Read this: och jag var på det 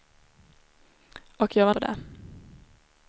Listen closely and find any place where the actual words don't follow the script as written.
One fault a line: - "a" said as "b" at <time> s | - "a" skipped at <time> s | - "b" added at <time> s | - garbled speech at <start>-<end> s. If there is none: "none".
none